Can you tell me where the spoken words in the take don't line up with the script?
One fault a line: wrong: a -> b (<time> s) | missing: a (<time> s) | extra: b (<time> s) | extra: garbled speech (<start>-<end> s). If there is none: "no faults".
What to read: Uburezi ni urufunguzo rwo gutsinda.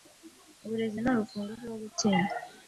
no faults